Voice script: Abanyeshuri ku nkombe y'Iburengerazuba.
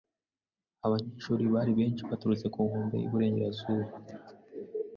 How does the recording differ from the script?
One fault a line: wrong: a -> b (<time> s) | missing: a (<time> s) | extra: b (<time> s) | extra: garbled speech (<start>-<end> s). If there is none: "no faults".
extra: bari benshi baturutse (1.5 s)